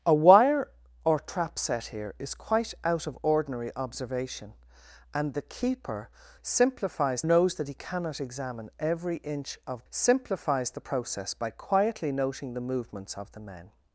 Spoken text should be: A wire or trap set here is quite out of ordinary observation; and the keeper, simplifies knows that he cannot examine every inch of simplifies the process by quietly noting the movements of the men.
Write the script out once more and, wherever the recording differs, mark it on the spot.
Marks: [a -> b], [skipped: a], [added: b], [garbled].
A wire or trap set here is quite out of ordinary observation; and the keeper, simplifies knows that he cannot examine every inch of simplifies the process by quietly noting the movements of the men.